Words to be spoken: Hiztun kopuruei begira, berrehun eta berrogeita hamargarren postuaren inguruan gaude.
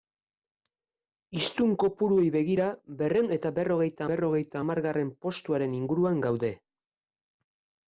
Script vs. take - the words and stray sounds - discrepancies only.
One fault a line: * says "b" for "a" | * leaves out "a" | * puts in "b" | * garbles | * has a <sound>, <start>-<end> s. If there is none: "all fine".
* puts in "berrogeita"